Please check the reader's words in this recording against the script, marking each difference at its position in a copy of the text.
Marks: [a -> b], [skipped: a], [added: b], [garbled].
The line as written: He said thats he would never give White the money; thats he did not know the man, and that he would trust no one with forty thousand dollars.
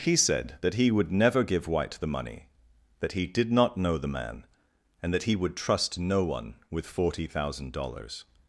He said [thats -> that] he would never give White the money; [thats -> that] he did not know the man, and that he would trust no one with forty thousand dollars.